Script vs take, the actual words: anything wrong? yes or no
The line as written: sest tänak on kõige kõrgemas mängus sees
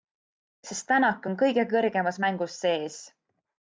no